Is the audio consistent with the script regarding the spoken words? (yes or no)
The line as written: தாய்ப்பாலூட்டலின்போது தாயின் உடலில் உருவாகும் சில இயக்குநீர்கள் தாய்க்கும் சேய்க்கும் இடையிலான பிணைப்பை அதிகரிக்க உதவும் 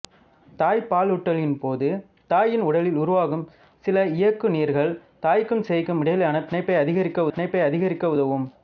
no